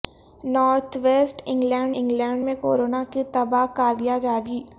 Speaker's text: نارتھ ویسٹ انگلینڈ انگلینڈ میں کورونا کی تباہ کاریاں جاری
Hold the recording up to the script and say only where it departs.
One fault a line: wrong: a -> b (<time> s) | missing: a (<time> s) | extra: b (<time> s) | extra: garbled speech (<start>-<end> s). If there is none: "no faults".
no faults